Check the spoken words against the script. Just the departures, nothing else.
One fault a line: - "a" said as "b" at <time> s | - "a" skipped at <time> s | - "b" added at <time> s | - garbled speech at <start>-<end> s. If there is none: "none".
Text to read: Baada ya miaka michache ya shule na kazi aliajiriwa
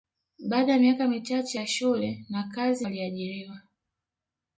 none